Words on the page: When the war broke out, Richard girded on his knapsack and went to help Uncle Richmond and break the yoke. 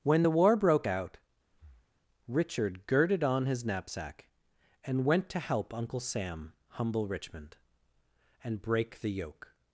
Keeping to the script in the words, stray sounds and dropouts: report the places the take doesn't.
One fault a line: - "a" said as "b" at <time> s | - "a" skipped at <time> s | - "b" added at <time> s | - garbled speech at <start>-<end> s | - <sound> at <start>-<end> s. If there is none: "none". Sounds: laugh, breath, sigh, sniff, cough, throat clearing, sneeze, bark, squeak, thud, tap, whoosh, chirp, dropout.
- breath at 1.5-2.0 s
- "Sam humble" added at 6.0 s